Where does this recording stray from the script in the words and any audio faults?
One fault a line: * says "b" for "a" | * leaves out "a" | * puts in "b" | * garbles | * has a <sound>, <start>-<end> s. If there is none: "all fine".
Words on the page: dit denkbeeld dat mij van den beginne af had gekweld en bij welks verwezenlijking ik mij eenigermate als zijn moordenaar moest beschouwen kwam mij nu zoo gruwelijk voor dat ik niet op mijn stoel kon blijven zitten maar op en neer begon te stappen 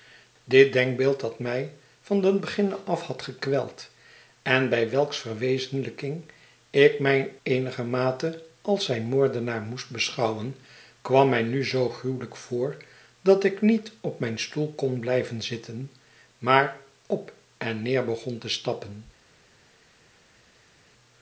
all fine